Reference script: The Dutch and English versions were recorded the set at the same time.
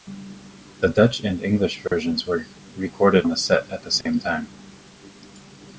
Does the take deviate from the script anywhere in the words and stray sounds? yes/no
yes